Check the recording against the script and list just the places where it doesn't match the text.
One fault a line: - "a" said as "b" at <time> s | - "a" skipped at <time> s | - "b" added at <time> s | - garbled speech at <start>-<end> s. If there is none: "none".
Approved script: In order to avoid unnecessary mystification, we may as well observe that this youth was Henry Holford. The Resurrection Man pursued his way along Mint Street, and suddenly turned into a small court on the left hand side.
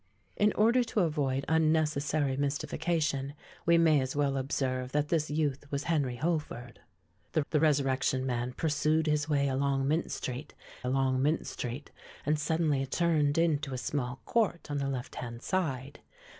- "the" added at 7.5 s
- "along Mint Street" added at 10.8 s